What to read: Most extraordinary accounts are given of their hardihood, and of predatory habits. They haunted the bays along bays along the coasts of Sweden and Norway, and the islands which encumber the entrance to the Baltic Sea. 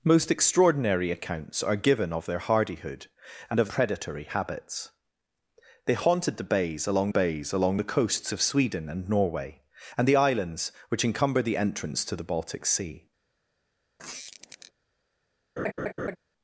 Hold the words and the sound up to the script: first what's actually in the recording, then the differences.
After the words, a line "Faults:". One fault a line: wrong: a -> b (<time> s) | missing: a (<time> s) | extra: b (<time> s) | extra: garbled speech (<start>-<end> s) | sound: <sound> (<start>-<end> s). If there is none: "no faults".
Most extraordinary accounts are given of their hardihood, and of predatory habits. They haunted the bays along bays along the coasts of Sweden and Norway, and the islands which encumber the entrance to the Baltic Sea.
Faults:
sound: squeak (14.0-14.7 s)
sound: laugh (15.6-16.2 s)